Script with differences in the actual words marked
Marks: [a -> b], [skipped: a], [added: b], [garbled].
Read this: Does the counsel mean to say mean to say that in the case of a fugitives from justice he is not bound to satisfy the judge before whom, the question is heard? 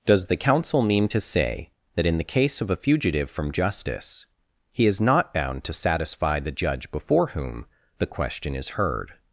Does the counsel mean to say [skipped: mean to say] that in the case of a [fugitives -> fugitive] from justice he is not bound to satisfy the judge before whom, the question is heard?